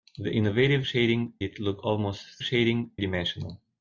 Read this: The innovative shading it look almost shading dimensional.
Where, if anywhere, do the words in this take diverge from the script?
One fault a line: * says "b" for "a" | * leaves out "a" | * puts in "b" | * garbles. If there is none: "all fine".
all fine